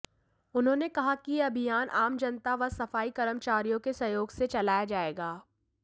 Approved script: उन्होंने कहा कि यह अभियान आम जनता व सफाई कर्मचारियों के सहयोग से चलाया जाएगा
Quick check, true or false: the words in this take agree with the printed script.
true